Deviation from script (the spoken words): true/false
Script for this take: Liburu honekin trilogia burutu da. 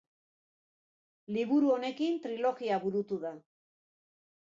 false